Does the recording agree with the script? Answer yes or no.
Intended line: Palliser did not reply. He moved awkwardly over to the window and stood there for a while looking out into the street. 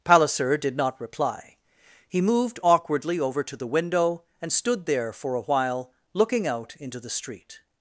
yes